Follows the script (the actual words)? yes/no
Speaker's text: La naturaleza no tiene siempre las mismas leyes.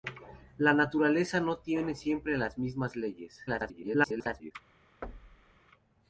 no